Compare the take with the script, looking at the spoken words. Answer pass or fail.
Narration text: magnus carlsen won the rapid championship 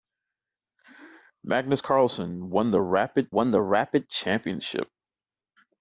fail